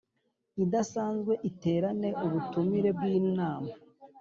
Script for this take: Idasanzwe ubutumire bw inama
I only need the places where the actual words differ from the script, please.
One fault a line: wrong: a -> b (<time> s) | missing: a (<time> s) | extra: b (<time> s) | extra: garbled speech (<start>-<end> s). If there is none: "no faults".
extra: iterane (1.5 s)